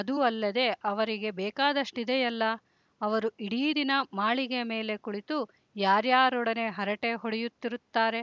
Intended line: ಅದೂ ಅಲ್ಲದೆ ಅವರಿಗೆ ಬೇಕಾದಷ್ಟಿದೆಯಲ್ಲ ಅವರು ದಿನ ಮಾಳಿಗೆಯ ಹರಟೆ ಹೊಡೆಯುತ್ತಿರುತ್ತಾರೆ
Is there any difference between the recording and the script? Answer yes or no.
yes